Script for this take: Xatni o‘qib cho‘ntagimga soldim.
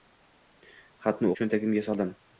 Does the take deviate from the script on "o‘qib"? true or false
true